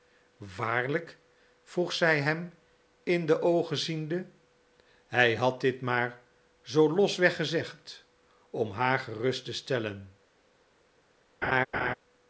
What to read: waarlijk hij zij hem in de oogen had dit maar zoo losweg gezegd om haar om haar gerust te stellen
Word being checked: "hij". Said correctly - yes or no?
no